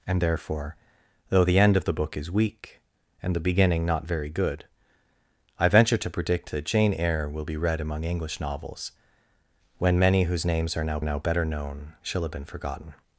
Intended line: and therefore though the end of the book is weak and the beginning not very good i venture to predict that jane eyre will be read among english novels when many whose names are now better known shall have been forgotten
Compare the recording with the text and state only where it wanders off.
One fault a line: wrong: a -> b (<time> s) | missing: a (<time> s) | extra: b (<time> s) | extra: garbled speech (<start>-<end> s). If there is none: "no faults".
extra: now (11.0 s)